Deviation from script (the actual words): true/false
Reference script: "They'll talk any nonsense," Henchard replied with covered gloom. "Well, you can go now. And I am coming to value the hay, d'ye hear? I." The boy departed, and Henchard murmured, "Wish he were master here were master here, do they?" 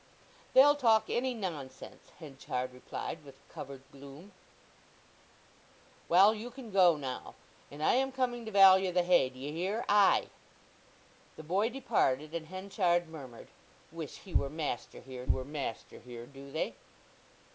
false